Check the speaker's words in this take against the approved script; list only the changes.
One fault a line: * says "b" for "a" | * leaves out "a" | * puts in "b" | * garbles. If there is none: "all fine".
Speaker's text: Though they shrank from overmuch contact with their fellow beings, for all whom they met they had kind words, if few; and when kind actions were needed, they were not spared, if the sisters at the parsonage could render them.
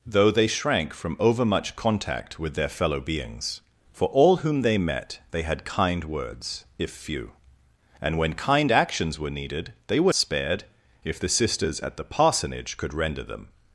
* leaves out "not"